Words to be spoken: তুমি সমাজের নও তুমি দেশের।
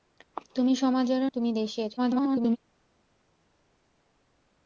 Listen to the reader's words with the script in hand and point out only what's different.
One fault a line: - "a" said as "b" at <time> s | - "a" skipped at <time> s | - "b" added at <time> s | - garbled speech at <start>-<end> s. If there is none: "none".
- "নও" skipped at 1.2 s
- garbled speech at 2.0-2.6 s